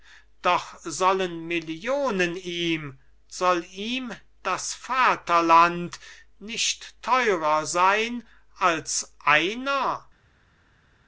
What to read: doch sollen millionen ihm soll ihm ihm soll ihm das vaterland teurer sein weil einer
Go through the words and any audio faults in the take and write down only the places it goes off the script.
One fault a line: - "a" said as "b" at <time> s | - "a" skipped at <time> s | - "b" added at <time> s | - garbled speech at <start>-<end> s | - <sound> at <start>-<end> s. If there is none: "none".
- "ihm soll ihm" skipped at 4.1 s
- "nicht" added at 6.4 s
- "weil" said as "als" at 8.6 s